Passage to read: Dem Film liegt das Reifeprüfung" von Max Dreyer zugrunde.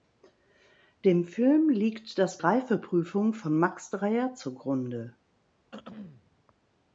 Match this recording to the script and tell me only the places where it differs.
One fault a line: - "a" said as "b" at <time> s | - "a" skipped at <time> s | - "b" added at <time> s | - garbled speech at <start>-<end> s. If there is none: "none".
none